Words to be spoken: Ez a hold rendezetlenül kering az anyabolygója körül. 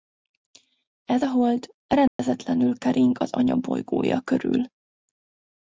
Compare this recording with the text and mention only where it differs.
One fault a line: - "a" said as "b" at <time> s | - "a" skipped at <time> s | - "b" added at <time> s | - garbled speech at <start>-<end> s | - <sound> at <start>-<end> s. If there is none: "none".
- dropout at 2.1-2.2 s